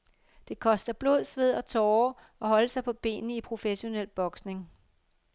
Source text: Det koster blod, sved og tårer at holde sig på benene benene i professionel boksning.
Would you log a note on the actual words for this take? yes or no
yes